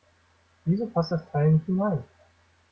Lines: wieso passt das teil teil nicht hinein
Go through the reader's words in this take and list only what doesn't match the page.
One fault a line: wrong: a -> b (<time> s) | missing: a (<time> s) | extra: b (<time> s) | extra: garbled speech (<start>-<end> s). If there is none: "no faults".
missing: teil (1.5 s)